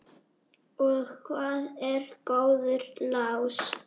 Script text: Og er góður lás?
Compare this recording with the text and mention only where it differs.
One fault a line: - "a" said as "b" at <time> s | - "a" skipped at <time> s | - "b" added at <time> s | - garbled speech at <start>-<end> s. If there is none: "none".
- "hvað" added at 1.3 s